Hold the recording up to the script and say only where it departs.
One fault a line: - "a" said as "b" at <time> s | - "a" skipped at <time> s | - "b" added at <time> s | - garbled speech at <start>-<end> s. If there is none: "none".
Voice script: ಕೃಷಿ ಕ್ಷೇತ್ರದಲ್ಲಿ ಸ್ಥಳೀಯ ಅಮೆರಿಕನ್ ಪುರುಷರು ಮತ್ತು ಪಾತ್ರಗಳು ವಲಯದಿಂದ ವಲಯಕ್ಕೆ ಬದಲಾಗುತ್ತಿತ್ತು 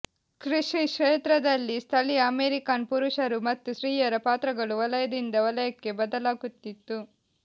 - "ಸ್ತ್ರೀಯರ" added at 3.7 s